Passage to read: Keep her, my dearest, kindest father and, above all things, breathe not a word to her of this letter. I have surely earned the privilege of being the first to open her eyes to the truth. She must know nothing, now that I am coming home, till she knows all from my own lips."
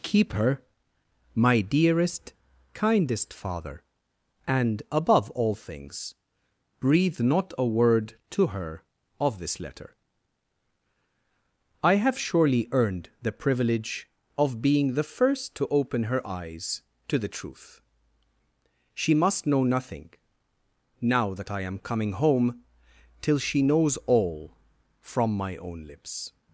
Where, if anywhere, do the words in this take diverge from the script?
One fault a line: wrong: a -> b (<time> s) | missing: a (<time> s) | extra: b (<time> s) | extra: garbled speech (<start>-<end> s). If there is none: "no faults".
no faults